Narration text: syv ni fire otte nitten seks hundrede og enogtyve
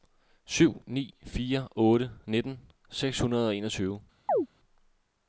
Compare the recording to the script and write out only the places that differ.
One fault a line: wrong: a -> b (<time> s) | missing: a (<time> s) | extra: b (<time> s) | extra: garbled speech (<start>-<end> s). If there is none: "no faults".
no faults